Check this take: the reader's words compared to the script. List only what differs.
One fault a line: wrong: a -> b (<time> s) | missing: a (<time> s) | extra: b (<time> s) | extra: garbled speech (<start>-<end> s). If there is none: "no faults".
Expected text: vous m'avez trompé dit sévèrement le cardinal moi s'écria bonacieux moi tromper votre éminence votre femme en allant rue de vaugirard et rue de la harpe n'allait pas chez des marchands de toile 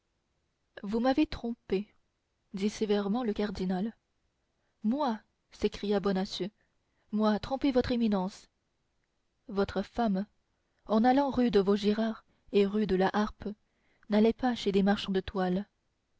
no faults